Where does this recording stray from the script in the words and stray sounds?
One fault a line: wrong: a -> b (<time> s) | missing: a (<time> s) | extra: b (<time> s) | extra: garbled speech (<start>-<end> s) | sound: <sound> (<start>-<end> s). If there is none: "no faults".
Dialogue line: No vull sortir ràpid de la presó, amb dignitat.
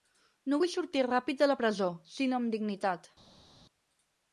extra: sinó (2.2 s)